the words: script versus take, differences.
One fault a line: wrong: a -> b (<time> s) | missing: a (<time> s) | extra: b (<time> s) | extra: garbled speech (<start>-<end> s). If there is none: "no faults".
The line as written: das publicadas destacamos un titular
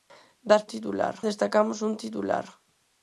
wrong: publicadas -> titular (0.7 s)